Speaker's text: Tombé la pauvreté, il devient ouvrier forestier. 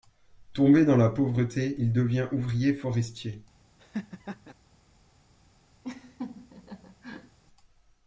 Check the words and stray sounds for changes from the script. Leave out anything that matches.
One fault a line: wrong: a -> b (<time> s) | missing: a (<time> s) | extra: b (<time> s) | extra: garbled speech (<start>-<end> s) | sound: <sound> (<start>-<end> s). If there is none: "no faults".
extra: dans (0.8 s)
sound: laugh (3.8-4.5 s)
sound: laugh (5.8-7.4 s)